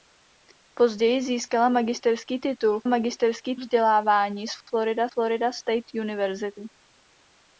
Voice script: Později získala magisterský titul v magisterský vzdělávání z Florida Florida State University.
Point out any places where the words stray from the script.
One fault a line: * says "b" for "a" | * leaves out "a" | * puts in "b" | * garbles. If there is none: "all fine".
all fine